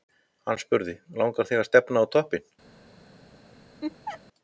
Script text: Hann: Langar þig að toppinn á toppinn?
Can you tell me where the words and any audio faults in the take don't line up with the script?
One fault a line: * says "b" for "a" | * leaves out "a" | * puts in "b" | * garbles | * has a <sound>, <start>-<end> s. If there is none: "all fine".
* puts in "spurði"
* says "stefna" for "toppinn"
* has a laugh, 3.8-4.2 s